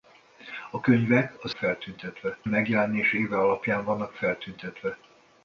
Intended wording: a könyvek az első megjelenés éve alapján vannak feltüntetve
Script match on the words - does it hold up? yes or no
no